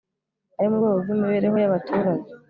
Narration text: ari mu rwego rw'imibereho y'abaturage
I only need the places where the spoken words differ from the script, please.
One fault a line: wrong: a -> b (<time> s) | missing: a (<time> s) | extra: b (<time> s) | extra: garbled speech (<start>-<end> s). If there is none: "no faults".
no faults